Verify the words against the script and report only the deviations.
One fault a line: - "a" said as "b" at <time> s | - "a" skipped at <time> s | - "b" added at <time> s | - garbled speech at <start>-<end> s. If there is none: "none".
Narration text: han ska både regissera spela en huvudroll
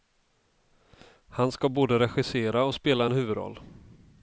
- "och" added at 2.6 s